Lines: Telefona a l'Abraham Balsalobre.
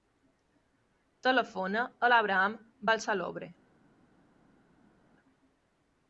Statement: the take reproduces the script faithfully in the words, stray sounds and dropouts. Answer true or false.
true